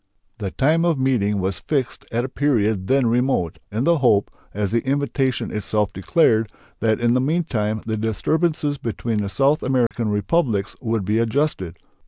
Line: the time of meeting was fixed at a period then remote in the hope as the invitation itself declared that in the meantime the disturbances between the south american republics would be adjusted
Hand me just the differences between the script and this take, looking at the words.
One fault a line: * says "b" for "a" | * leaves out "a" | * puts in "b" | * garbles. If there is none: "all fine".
all fine